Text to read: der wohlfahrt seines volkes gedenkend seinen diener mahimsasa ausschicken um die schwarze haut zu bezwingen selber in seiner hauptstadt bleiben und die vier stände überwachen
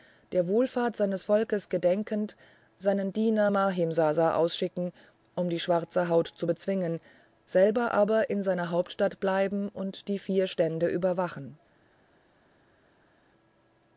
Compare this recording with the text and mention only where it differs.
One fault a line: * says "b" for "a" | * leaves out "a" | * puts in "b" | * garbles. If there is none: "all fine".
* puts in "aber"